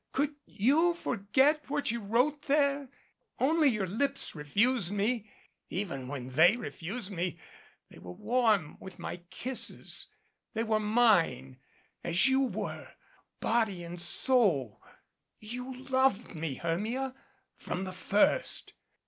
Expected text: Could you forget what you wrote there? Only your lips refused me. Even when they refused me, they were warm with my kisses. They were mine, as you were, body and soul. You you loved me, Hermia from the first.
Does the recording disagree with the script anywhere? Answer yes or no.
yes